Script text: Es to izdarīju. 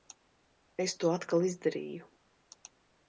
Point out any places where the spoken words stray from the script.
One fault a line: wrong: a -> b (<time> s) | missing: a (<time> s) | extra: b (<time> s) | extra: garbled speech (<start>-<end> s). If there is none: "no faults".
extra: atkal (1.2 s)